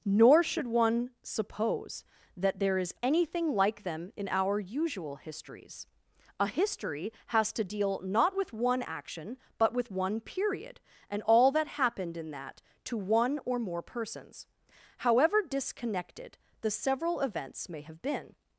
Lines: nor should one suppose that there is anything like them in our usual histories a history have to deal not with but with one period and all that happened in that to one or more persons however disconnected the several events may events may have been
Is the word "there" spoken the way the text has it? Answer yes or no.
yes